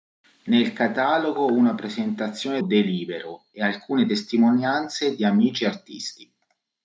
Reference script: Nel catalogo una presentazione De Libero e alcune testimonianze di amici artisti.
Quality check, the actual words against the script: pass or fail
pass